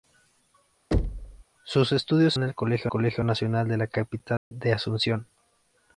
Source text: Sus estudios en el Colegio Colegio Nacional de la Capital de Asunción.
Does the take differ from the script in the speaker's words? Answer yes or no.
no